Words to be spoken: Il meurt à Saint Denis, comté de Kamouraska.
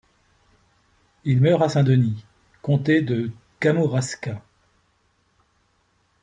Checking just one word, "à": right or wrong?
right